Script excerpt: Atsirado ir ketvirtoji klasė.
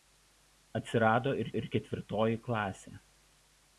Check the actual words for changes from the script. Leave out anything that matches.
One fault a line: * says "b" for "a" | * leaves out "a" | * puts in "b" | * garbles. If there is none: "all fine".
* puts in "ir"